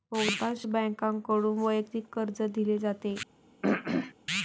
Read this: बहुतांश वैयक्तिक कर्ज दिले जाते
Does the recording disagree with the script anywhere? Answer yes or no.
yes